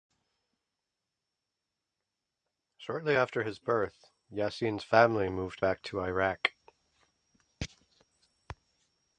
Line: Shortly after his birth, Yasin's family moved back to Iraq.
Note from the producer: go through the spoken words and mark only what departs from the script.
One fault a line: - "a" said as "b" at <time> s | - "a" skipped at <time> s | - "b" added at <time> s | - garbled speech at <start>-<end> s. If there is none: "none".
none